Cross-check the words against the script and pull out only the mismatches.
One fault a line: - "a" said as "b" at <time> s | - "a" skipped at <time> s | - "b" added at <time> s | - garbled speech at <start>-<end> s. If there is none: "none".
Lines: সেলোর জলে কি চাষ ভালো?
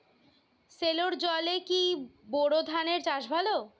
- "বোর ধানের" added at 2.3 s